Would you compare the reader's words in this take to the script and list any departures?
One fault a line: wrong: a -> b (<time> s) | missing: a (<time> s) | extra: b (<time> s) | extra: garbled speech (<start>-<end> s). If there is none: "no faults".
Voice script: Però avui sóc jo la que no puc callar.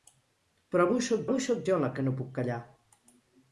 extra: avui sóc (1.3 s)